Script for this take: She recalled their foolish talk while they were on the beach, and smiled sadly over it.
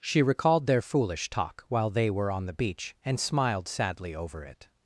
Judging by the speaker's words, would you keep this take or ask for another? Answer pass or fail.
pass